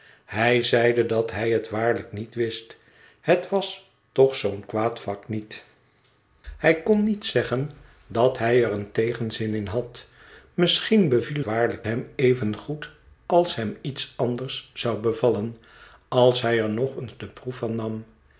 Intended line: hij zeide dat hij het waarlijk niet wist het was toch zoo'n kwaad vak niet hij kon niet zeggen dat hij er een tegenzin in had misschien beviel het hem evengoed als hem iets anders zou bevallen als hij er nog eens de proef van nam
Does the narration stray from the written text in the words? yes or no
yes